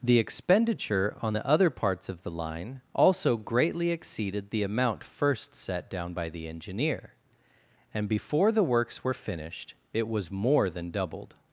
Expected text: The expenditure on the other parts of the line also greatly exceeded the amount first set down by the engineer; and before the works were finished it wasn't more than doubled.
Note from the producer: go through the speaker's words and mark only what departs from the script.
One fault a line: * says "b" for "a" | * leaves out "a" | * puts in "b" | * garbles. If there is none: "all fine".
* says "was" for "wasn't"